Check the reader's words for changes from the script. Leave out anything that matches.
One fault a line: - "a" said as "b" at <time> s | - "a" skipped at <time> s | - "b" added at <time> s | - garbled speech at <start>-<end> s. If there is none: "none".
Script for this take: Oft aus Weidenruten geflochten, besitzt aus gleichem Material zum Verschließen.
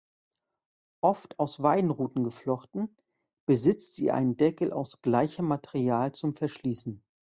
- "sie einen Deckel" added at 3.9 s